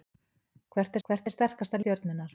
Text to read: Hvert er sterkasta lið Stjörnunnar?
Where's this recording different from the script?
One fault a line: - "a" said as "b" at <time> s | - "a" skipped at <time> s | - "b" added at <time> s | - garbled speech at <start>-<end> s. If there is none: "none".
- "hvert" added at 1.1 s
- "lið" skipped at 1.8 s